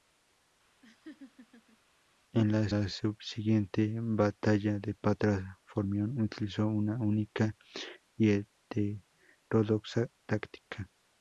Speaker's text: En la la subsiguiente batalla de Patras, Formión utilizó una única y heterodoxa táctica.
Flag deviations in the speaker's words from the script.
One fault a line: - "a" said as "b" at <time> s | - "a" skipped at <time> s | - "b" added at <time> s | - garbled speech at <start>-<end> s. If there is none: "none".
none